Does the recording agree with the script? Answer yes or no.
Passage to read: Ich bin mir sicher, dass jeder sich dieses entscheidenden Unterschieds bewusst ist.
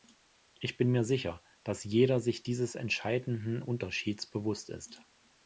yes